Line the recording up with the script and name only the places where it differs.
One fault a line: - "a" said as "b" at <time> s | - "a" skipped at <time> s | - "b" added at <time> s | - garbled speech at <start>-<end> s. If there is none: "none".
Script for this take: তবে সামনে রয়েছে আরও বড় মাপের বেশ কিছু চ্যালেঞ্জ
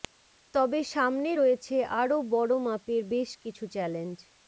none